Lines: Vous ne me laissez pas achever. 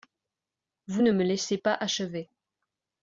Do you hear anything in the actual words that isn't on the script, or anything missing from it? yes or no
no